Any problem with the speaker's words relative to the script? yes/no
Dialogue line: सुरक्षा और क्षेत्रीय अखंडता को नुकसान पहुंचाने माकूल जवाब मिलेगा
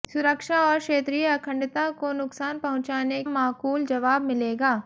no